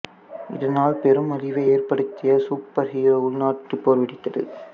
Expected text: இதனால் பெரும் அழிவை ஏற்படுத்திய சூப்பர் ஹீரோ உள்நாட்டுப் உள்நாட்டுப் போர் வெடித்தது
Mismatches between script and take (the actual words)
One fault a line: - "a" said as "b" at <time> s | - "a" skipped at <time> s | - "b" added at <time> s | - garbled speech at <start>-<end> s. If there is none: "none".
- "உள்நாட்டுப்" skipped at 3.8 s